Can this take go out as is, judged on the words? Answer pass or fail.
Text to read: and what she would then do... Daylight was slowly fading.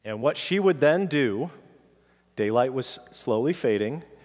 pass